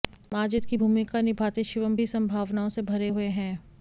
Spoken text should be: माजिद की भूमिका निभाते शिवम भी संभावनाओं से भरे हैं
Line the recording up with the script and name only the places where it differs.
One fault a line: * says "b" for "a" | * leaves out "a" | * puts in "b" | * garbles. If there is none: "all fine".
* puts in "हुए"